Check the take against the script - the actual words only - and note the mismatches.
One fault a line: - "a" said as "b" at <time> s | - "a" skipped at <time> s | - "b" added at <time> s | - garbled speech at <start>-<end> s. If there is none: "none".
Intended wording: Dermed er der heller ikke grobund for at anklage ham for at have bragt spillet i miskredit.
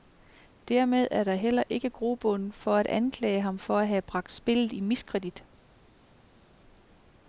none